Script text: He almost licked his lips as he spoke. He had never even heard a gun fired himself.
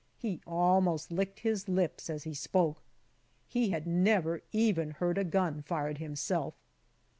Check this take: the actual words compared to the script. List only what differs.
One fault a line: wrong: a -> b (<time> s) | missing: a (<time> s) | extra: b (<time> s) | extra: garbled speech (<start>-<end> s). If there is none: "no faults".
no faults